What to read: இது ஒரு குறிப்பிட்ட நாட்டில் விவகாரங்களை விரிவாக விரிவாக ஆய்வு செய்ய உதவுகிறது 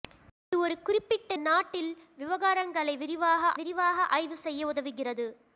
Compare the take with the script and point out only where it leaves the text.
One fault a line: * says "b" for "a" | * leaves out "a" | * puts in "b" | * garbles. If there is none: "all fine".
all fine